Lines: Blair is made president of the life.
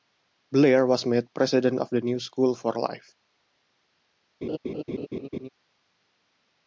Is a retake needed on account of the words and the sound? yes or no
yes